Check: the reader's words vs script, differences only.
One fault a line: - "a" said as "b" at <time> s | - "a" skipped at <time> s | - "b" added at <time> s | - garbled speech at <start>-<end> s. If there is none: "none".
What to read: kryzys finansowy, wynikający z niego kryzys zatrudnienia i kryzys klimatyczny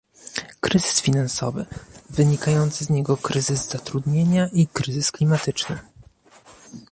none